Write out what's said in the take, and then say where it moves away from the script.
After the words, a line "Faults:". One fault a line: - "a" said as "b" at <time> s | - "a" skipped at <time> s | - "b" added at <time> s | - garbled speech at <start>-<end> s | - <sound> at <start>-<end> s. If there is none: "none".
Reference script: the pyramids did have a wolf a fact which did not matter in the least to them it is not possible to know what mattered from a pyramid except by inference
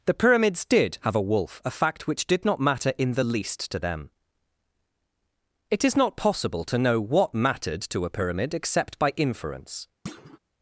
the pyramids did have a wolf a fact which did not matter in the least to them it is not possible to know what mattered to a pyramid except by inference
Faults:
- "from" said as "to" at 7.9 s
- thud at 10.1-10.4 s